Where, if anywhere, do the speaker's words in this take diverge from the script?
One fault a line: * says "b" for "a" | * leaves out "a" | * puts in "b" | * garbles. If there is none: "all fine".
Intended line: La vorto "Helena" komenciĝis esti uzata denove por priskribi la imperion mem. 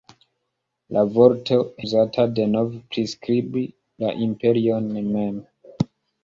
* leaves out "Helena komenciĝis esti"
* leaves out "por"